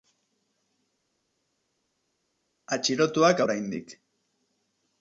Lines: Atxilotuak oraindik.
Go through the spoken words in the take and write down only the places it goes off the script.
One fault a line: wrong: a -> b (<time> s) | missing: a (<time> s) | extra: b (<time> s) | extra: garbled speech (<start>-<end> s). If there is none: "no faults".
no faults